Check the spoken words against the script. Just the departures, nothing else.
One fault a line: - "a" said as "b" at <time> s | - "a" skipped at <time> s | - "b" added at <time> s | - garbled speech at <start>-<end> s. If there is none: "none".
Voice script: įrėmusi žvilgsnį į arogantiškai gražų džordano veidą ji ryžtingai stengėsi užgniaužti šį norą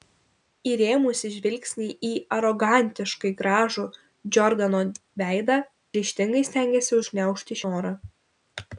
- "ji" skipped at 5.6 s
- "šį" skipped at 7.6 s